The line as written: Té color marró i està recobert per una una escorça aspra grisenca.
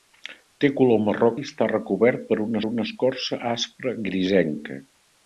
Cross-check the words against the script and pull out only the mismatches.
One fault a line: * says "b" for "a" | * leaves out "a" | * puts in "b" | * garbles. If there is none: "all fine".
all fine